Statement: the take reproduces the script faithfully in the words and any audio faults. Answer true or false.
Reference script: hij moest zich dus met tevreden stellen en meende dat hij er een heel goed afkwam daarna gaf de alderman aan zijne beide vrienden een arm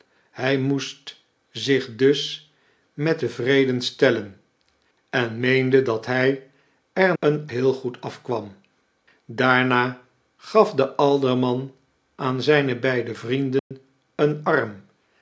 false